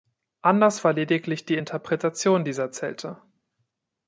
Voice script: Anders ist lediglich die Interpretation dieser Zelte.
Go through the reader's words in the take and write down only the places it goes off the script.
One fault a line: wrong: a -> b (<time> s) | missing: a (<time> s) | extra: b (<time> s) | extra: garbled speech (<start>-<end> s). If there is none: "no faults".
wrong: ist -> war (0.8 s)